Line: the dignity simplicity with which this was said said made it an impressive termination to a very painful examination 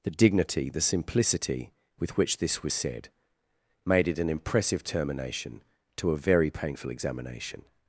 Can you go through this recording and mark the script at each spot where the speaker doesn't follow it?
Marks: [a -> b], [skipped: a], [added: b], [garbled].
the dignity [added: the] simplicity with which this was said [skipped: said] made it an impressive termination to a very painful examination